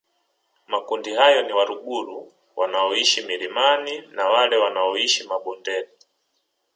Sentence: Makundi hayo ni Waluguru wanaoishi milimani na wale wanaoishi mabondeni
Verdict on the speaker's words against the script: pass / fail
pass